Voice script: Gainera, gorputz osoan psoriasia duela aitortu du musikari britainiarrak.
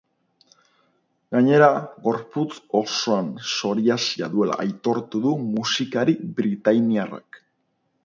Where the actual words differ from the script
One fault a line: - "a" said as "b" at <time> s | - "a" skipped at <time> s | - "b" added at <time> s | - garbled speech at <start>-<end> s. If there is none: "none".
none